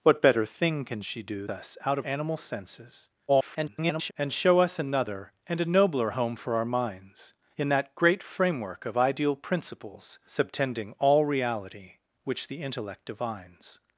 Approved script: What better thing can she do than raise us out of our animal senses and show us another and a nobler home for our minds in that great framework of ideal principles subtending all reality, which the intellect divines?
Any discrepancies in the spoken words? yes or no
yes